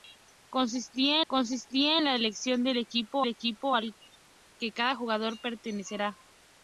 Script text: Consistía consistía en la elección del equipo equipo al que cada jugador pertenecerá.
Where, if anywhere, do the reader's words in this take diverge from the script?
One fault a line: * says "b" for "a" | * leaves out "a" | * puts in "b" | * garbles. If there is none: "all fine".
all fine